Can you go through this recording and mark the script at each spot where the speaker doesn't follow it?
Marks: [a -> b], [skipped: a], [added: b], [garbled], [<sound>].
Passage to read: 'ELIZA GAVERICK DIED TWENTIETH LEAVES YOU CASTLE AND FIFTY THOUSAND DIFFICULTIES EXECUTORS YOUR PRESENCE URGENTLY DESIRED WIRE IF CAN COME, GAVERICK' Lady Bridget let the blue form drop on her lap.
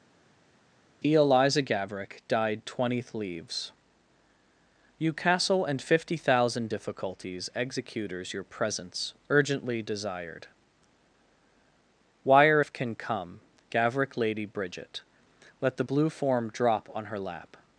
'ELIZA GAVERICK DIED TWENTIETH LEAVES YOU CASTLE AND FIFTY THOUSAND DIFFICULTIES EXECUTORS YOUR PRESENCE URGENTLY DESIRED WIRE IF CAN COME, GAVERICK' Lady Bridget let the blue form drop on her lap.